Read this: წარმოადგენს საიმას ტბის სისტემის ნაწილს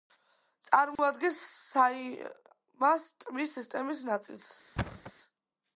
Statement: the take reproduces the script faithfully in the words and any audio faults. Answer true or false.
false